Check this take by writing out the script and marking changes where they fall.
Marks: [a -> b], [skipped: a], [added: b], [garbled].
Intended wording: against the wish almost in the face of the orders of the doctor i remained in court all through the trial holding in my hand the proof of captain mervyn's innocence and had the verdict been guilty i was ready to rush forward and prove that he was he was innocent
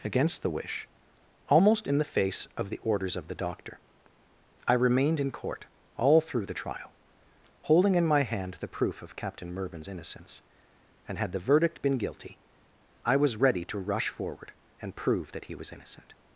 against the wish almost in the face of the orders of the doctor i remained in court all through the trial holding in my hand the proof of captain mervyn's innocence and had the verdict been guilty i was ready to rush forward and prove that he was [skipped: he was] innocent